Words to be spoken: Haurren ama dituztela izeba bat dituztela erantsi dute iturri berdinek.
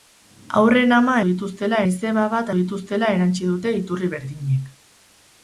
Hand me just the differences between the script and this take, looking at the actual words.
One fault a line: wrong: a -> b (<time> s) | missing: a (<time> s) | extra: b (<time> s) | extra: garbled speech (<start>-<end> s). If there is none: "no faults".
no faults